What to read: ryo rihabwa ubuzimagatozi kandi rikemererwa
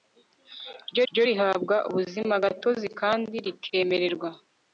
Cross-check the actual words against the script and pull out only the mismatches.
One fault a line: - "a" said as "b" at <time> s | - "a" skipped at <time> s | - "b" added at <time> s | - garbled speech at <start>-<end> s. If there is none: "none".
- "ryo" added at 1.1 s